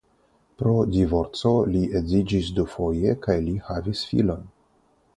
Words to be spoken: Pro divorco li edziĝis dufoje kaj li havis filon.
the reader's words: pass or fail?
pass